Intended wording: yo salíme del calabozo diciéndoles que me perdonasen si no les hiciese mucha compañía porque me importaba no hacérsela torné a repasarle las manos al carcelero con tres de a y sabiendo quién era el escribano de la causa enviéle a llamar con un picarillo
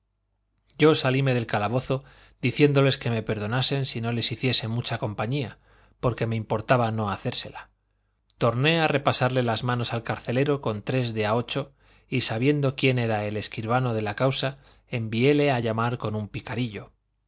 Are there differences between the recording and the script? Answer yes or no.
yes